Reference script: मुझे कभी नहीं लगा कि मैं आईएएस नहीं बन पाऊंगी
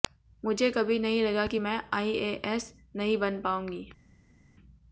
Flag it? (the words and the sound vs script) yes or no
no